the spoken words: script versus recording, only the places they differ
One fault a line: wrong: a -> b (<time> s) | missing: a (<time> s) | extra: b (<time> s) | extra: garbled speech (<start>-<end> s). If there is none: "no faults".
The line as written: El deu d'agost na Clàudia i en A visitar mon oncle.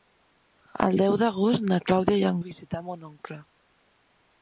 no faults